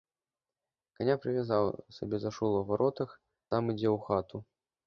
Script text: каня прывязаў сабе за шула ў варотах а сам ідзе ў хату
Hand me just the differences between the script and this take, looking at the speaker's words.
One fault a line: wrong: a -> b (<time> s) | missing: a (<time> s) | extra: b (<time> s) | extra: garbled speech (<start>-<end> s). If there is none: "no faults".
missing: а (3.1 s)